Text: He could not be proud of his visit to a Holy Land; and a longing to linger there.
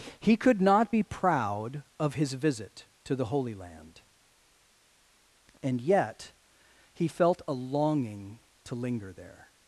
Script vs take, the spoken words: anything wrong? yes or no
yes